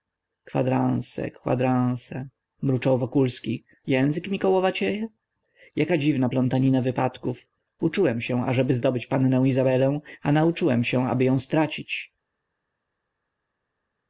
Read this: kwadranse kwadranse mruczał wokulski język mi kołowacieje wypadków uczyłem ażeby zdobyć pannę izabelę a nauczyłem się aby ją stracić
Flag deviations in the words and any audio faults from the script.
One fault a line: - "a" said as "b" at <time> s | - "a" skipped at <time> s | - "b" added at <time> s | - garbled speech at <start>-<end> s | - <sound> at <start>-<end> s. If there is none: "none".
- "jaka dziwna plątanina" added at 5.8 s
- "się" added at 8.2 s